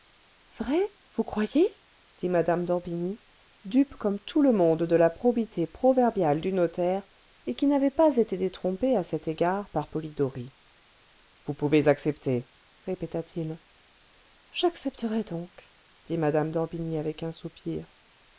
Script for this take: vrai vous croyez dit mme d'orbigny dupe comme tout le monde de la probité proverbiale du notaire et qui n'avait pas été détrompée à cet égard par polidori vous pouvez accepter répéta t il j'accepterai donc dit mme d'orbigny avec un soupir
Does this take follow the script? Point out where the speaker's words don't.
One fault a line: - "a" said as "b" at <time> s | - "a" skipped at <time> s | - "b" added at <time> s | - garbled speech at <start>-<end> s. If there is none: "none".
none